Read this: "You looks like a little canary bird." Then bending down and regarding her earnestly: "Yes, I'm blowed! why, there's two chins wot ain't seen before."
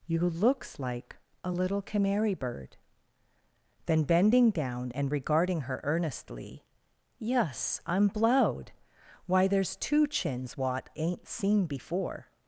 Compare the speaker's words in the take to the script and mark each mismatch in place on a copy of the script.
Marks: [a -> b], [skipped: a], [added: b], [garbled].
"You looks like a little canary bird." Then bending down and regarding her earnestly: "Yes, I'm blowed! why, there's two chins wot ain't seen before."